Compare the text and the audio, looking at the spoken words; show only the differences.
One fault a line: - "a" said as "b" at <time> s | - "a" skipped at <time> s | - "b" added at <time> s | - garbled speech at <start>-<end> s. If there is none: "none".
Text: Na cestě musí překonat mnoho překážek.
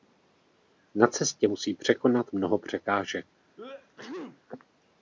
none